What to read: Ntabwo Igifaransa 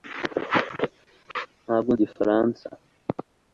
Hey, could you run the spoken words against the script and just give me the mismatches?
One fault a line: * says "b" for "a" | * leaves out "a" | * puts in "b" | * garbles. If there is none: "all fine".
all fine